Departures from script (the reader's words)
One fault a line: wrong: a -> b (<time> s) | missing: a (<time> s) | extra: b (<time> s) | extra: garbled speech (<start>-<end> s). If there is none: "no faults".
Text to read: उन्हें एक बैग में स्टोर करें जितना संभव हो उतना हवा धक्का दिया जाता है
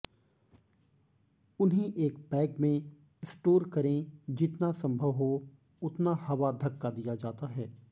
no faults